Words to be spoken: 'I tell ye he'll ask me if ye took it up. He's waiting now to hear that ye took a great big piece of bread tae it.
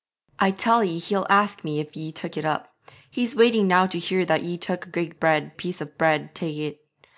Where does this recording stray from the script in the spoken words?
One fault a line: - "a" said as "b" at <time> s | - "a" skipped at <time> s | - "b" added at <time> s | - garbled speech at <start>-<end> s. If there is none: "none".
- "big" said as "bread" at 5.2 s